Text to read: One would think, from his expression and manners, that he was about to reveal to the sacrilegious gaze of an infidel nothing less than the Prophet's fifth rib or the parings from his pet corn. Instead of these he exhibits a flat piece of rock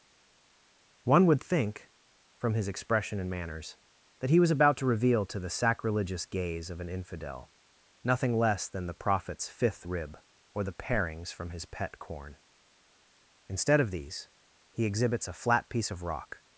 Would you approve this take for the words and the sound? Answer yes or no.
yes